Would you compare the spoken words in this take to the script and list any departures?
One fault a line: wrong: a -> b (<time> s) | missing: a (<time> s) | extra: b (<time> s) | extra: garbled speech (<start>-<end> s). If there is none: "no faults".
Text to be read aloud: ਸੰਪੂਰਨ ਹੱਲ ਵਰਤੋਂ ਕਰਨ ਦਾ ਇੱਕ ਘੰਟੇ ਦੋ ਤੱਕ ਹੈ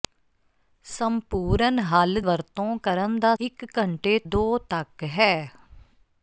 no faults